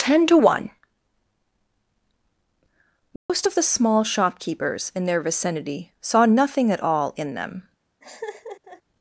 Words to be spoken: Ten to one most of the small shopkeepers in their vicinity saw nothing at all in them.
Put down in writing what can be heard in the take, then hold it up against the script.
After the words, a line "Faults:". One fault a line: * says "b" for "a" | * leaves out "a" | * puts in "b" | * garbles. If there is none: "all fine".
Ten to one most of the small shopkeepers in their vicinity saw nothing at all in them.
Faults:
all fine